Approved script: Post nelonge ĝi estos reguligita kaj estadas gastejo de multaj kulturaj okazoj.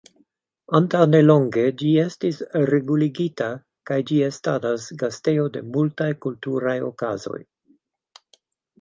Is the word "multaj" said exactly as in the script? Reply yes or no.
yes